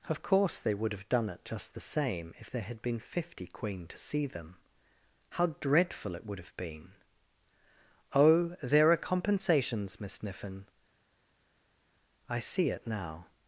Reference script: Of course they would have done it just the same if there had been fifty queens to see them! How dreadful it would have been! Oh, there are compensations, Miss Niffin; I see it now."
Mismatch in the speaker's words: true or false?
true